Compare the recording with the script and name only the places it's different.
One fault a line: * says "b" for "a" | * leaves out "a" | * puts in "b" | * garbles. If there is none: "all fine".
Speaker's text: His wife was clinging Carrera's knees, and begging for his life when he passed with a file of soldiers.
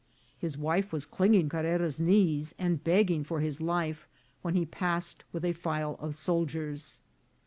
all fine